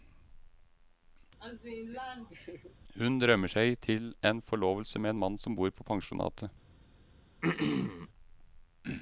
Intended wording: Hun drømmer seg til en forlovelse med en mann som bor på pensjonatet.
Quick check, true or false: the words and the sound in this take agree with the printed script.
false